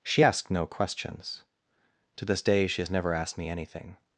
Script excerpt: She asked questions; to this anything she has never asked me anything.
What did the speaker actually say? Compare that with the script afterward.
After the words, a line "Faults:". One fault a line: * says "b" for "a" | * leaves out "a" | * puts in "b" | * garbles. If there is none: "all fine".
She asked no questions; to this day she has never asked me anything.
Faults:
* puts in "no"
* says "day" for "anything"